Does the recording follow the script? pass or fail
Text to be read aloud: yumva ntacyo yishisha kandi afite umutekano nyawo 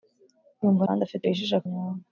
fail